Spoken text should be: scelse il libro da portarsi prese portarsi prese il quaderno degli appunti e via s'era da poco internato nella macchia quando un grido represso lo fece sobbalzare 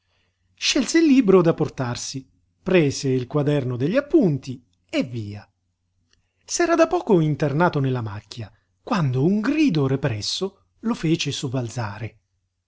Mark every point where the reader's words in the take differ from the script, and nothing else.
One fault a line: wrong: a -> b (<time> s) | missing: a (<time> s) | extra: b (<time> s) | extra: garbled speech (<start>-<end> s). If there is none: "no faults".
missing: portarsi prese (3.1 s)